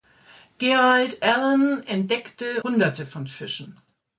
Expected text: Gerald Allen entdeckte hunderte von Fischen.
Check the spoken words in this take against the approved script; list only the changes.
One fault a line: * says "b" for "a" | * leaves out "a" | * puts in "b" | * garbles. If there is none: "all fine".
all fine